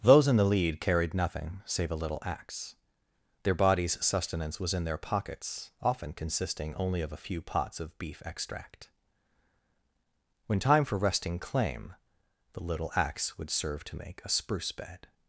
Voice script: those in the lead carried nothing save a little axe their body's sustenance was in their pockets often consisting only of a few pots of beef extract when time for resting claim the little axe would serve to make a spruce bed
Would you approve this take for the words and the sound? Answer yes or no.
yes